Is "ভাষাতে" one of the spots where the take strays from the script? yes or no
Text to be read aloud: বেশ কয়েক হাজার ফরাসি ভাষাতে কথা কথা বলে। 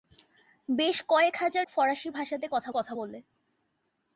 no